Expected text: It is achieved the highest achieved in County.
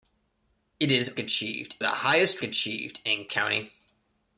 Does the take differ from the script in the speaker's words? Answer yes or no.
no